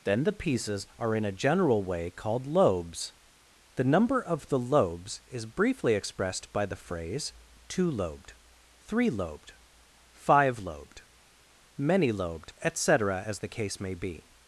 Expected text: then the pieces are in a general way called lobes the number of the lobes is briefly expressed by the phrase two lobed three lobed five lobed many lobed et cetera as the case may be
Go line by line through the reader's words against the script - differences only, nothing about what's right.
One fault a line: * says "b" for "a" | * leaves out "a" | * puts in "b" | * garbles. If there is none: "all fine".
all fine